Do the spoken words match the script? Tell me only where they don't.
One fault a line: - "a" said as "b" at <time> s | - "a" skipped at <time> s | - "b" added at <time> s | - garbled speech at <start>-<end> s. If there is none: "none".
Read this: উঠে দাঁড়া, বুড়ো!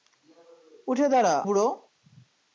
none